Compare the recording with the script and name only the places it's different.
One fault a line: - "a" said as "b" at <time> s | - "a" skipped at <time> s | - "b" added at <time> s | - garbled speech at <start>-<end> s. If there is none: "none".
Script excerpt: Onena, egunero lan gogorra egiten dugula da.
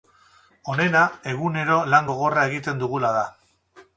none